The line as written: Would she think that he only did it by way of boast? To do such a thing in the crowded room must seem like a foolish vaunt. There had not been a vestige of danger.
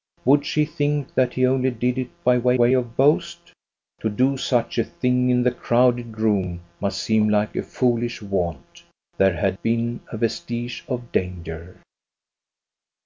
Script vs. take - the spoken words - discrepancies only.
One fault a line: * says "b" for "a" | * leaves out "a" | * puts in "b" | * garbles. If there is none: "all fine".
* puts in "way"
* leaves out "not"